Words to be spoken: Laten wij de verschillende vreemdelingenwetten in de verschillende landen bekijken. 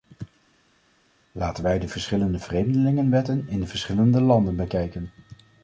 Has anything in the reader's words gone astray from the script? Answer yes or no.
no